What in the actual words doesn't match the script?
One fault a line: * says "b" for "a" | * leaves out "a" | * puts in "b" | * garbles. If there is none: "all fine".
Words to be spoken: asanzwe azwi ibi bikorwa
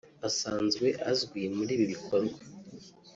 * puts in "muri"